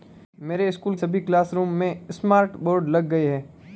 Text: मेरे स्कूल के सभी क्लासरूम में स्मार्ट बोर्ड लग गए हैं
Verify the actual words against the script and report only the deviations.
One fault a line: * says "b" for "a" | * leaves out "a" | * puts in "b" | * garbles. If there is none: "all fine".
* leaves out "के"